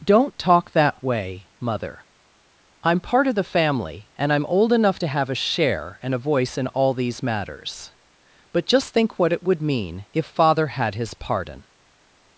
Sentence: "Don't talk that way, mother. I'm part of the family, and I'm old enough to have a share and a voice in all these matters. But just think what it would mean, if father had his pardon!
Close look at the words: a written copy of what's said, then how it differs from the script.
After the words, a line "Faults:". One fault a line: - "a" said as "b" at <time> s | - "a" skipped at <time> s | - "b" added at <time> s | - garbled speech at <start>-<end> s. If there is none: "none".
"Don't talk that way, mother. I'm part of the family, and I'm old enough to have a share and a voice in all these matters. But just think what it would mean, if father had his pardon!
Faults:
none